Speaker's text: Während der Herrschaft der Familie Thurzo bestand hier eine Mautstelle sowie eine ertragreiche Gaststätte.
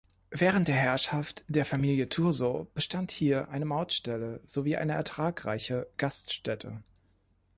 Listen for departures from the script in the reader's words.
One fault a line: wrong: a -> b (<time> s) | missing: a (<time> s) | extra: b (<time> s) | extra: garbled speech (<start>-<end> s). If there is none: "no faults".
no faults